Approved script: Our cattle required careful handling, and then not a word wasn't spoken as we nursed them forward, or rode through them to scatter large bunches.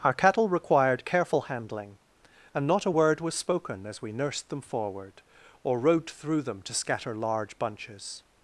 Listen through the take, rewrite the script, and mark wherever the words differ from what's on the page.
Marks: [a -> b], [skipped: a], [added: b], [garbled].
Our cattle required careful handling, and [skipped: then] not a word [wasn't -> was] spoken as we nursed them forward, or rode through them to scatter large bunches.